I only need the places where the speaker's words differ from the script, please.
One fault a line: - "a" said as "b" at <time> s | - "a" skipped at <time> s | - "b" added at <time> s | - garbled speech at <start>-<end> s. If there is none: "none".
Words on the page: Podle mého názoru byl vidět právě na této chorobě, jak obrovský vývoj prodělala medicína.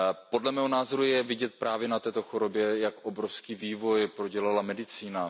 - "byl" said as "je" at 1.0 s